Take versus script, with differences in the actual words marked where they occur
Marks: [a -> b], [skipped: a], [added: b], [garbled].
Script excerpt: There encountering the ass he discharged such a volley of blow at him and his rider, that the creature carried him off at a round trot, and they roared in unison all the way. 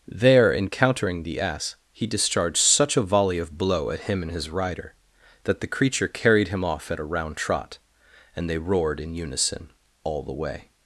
There encountering the ass he discharged such a volley of blow at him and his rider, that the creature carried him off at a round trot, and they roared in unison all the way.